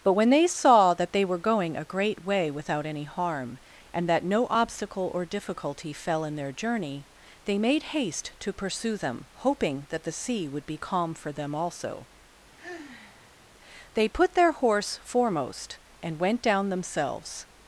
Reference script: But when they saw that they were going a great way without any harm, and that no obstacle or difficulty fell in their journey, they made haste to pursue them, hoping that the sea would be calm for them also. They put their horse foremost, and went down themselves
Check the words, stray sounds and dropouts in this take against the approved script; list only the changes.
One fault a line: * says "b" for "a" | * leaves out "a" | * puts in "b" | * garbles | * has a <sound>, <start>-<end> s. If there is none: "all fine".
* has a sigh, 12.6-13.4 s